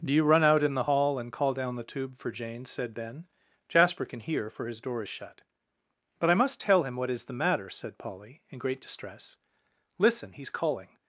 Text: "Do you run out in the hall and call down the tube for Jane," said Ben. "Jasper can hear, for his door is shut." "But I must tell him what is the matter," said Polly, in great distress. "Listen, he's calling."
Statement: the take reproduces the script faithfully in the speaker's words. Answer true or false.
true